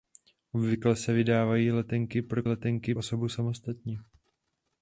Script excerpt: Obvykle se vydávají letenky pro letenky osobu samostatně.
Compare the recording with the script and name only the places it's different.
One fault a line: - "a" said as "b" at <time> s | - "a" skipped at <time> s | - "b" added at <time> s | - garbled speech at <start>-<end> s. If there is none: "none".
none